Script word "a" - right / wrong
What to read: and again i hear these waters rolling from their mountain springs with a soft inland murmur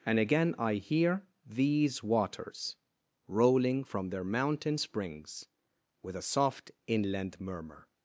right